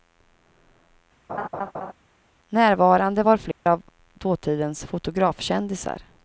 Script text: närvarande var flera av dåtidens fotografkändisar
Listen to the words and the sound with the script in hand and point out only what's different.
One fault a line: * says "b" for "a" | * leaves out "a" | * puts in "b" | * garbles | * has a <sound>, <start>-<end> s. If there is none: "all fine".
* has a laugh, 1.3-1.9 s
* has a dropout, 3.5-3.7 s